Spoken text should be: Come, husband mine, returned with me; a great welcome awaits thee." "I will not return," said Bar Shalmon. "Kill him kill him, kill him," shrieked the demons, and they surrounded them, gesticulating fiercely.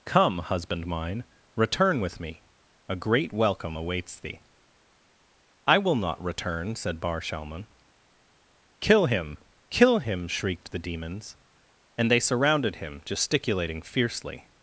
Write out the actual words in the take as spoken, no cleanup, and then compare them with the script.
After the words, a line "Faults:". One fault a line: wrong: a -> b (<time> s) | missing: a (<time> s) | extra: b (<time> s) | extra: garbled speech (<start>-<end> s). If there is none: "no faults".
Come, husband mine, return with me; a great welcome awaits thee." "I will not return," said Bar Shalmon. "Kill him, kill him," shrieked the demons, and they surrounded him, gesticulating fiercely.
Faults:
wrong: returned -> return (1.6 s)
missing: kill him (10.3 s)
wrong: them -> him (12.8 s)